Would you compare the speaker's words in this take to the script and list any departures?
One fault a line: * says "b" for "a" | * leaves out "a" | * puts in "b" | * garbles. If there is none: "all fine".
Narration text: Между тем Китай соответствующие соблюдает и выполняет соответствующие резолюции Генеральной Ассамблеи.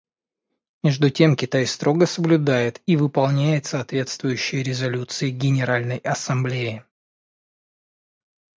* says "строго" for "соответствующие"